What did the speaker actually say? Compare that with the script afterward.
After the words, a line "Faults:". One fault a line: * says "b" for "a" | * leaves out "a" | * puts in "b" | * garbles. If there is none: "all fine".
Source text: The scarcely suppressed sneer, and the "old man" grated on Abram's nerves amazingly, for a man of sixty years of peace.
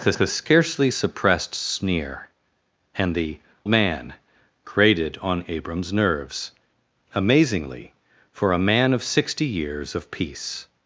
The the scarcely suppressed sneer, and the "man" grated on Abram's nerves amazingly, for a man of sixty years of peace.
Faults:
* puts in "the"
* leaves out "old"